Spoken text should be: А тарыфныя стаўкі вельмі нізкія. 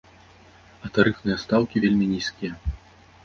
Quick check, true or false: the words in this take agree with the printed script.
true